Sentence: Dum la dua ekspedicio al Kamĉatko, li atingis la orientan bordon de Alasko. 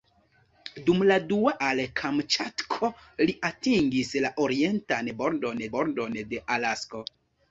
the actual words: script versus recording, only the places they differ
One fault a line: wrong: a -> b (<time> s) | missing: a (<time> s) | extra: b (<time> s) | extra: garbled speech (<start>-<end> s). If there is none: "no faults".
missing: ekspedicio (1.5 s)
extra: bordon (5.8 s)